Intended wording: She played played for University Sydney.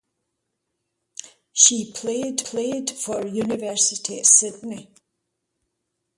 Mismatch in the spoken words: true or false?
false